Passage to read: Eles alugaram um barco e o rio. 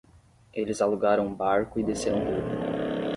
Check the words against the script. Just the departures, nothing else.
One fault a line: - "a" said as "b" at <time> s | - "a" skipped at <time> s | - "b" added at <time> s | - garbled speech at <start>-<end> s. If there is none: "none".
- "desceram" added at 1.8 s